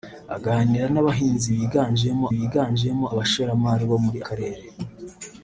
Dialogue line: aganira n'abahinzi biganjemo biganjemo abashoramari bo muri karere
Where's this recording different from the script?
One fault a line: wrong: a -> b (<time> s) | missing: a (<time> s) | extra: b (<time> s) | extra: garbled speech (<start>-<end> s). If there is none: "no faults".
no faults